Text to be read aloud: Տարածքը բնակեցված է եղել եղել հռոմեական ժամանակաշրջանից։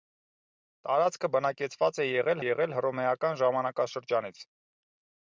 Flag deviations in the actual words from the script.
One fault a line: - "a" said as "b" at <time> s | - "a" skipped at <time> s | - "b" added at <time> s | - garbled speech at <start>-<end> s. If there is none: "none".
none